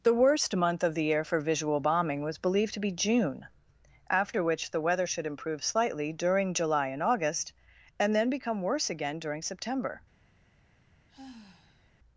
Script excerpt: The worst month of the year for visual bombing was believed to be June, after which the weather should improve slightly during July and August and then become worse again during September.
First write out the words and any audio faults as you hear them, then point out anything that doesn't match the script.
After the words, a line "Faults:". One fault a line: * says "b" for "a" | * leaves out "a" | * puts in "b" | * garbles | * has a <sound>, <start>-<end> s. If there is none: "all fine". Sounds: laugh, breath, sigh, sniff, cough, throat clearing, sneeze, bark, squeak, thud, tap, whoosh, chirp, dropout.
The worst month of the year for visual bombing was believed to be June, after which the weather should improve slightly during July and August and then become worse again during September.
Faults:
* has a sigh, 11.1-11.9 s